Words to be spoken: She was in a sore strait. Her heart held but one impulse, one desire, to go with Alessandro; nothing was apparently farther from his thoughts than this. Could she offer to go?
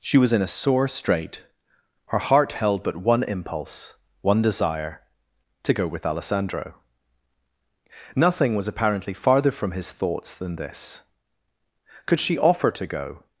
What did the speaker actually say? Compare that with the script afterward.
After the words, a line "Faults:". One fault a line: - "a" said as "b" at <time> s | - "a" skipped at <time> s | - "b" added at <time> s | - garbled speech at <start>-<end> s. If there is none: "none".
She was in a sore strait. Her heart held but one impulse, one desire, to go with Alessandro; nothing was apparently farther from his thoughts than this. Could she offer to go?
Faults:
none